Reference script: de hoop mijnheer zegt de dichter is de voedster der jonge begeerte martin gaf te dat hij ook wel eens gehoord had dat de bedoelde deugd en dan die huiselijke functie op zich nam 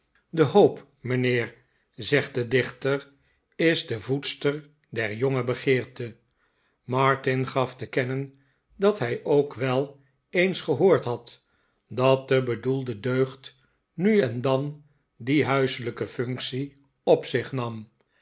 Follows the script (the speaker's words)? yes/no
no